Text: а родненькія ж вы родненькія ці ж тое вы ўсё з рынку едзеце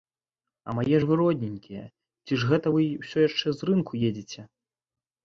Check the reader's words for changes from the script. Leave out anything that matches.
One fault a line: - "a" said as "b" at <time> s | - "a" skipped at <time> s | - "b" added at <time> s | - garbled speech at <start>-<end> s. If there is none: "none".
- "родненькія" said as "мае" at 0.8 s
- "тое" said as "гэта" at 2.5 s
- "яшчэ" added at 3.3 s